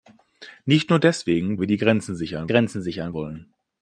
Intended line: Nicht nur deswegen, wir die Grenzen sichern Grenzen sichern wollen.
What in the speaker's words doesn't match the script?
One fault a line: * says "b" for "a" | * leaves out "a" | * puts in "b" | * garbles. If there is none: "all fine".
all fine